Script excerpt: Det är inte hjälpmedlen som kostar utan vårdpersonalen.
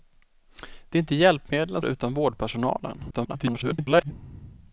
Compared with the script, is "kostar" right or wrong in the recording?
wrong